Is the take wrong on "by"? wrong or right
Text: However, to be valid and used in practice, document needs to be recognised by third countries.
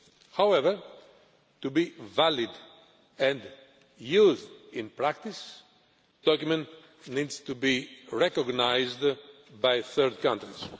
right